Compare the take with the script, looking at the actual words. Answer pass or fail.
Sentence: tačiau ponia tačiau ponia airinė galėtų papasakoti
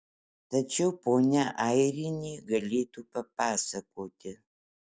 fail